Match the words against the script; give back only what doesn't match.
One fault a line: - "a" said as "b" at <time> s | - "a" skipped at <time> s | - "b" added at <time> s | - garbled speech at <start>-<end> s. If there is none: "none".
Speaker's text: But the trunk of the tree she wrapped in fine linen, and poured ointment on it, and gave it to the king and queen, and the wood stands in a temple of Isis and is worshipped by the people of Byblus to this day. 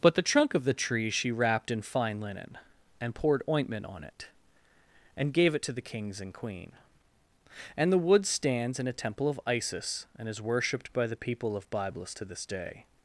- "king" said as "kings" at 5.8 s